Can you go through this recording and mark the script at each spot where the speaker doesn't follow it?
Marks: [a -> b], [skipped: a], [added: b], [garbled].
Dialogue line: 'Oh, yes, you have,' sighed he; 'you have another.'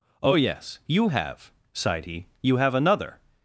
'Oh, yes, you have,' sighed he; 'you have another.'